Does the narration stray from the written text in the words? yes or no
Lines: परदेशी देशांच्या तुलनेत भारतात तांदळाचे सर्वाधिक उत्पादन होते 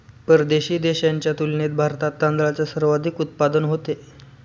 no